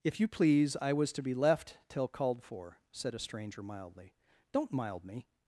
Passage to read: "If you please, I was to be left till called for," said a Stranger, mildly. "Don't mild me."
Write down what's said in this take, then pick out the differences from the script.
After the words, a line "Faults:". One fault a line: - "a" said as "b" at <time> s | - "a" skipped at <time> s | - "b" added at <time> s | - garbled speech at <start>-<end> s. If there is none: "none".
"If you please, I was to be left till called for," said a Stranger, mildly. "Don't mild me."
Faults:
none